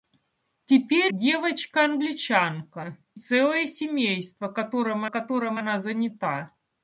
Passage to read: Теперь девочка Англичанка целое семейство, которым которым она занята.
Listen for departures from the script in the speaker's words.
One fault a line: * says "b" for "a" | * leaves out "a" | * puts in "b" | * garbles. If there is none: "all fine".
all fine